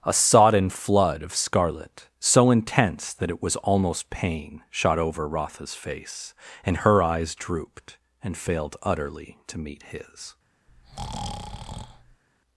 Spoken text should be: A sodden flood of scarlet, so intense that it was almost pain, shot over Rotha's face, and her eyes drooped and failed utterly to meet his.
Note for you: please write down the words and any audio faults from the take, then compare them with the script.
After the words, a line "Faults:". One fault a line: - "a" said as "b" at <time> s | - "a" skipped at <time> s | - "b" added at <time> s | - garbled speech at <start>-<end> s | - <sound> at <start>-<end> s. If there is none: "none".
A sodden flood of scarlet, so intense that it was almost pain, shot over Rotha's face, and her eyes drooped and failed utterly to meet his.
Faults:
- breath at 10.7-12.2 s